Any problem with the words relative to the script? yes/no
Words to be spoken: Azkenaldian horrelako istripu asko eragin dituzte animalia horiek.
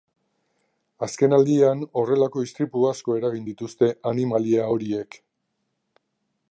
no